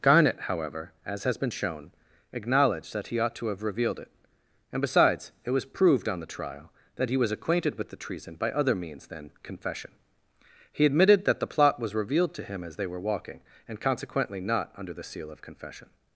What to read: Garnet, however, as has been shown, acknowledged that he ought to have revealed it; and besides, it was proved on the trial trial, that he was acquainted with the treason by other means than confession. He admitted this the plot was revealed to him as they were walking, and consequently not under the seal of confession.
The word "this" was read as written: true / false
false